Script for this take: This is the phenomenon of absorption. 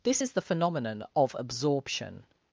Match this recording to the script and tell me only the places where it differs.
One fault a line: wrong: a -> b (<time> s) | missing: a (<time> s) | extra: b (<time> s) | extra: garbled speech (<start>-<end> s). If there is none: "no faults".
no faults